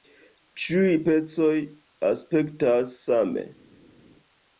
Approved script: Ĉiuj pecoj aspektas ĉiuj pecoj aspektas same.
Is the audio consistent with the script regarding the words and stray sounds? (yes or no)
no